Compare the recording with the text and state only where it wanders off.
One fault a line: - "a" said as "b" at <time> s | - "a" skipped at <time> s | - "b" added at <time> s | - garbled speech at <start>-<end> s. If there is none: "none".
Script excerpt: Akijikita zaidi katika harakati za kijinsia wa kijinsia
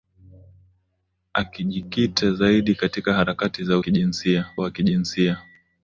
none